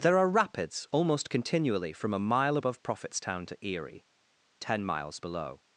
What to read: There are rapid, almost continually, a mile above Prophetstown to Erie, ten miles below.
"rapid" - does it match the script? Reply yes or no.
no